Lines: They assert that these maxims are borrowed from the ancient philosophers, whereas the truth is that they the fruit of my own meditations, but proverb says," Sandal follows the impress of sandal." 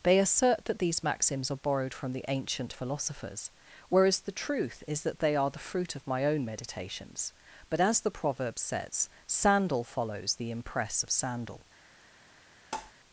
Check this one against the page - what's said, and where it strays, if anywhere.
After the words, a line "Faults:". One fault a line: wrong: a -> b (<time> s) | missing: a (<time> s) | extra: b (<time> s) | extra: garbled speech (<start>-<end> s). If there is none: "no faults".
They assert that these maxims are borrowed from the ancient philosophers, whereas the truth is that they are the fruit of my own meditations, but as the proverb says," Sandal follows the impress of sandal."
Faults:
extra: are (5.3 s)
extra: as the (7.8 s)